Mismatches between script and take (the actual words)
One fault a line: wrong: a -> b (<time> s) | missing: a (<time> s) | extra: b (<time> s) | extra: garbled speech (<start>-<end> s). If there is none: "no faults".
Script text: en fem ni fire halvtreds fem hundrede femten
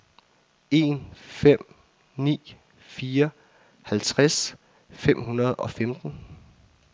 extra: og (5.5 s)